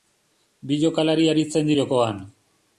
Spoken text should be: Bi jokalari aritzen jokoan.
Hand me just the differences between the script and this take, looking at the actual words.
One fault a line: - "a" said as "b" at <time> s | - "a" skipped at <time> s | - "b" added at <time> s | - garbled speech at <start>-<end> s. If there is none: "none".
none